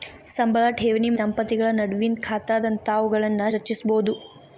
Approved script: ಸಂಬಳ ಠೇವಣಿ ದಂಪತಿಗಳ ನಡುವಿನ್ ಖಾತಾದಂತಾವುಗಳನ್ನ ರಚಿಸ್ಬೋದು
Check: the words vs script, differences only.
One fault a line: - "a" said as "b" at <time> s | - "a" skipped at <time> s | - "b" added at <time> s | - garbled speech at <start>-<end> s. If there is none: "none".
none